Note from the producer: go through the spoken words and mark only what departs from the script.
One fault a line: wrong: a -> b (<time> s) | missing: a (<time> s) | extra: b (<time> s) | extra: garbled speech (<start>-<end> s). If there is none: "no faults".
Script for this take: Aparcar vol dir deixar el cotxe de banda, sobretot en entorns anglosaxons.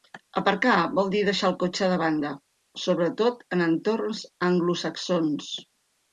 no faults